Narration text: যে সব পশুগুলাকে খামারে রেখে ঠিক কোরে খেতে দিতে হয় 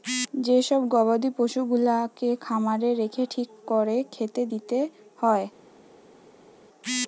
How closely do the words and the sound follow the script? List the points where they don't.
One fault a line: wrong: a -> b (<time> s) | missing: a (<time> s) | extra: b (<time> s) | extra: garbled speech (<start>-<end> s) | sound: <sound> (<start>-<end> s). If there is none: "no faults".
extra: গবাদি (0.9 s)